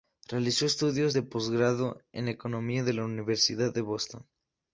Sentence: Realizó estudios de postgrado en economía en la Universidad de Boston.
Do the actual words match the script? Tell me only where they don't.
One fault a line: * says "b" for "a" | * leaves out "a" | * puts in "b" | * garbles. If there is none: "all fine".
all fine